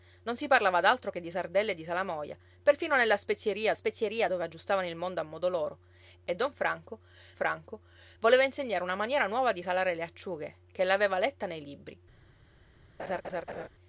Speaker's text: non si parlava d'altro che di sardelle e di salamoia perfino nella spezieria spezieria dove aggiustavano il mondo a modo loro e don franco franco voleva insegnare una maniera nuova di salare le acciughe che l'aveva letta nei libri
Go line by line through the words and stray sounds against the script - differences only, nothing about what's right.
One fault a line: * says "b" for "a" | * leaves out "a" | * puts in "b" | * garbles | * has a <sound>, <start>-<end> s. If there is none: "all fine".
* has a laugh, 13.0-13.7 s